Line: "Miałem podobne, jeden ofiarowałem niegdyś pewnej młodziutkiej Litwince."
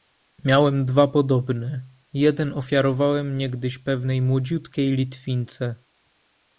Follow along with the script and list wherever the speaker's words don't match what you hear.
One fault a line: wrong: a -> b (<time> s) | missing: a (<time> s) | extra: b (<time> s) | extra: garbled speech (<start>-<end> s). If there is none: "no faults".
extra: dwa (0.8 s)